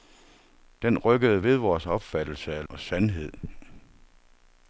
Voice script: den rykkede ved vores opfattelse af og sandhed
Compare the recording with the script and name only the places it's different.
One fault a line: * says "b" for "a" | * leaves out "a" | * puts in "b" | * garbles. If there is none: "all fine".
all fine